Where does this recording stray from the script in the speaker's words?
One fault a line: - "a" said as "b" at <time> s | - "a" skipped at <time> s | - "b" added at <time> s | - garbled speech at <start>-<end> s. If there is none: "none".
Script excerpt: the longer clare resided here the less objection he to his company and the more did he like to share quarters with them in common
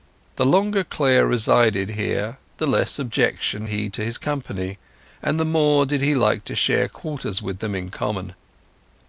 none